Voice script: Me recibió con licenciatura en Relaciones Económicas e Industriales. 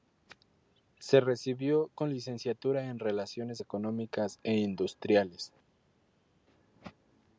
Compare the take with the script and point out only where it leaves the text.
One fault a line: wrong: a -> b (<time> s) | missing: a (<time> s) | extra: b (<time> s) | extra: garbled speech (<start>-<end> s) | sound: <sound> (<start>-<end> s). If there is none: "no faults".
wrong: Me -> Se (1.0 s)